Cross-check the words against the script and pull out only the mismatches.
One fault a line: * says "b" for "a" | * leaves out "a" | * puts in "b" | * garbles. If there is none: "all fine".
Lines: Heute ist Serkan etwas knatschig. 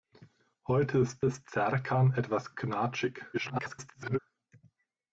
* puts in "ist"
* garbles